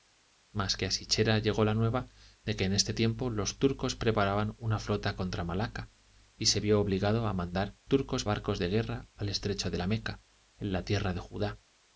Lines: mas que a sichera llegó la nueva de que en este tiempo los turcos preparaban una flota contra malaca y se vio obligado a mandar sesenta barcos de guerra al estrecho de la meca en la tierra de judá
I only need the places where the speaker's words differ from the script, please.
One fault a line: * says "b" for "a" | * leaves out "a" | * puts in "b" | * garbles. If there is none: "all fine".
* says "turcos" for "sesenta"